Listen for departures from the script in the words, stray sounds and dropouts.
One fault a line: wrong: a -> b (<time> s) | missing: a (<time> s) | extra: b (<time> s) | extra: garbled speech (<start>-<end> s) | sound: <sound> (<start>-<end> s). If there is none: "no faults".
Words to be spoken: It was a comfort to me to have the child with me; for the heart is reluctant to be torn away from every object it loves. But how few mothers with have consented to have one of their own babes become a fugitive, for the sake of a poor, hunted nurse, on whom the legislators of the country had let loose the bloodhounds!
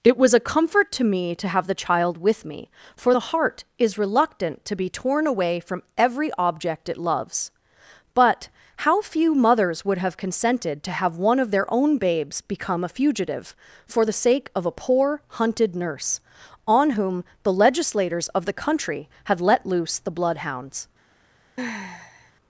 wrong: with -> would (9.8 s)
sound: sigh (21.6-22.3 s)